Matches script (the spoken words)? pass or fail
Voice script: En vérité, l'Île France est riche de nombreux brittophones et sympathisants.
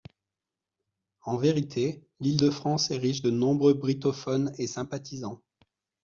fail